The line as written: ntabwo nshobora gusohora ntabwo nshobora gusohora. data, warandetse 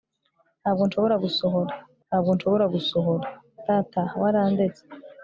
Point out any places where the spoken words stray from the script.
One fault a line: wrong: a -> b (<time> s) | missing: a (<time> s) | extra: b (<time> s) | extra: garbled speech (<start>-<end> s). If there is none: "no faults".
no faults